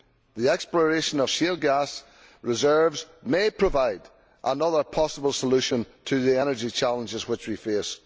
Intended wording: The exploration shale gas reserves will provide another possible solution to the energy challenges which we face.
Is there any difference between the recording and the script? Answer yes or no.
yes